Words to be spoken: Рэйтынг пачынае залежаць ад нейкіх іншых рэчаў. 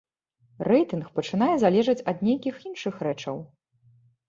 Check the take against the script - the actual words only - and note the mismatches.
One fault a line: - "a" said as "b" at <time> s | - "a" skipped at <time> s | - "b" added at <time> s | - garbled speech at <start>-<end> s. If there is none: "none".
none